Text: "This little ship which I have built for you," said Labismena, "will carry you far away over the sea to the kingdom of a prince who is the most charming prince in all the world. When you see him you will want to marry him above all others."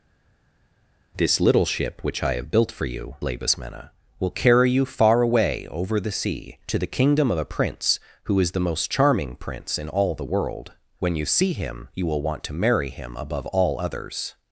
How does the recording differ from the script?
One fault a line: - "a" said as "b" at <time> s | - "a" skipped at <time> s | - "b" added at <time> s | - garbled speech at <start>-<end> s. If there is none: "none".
- "said" skipped at 3.2 s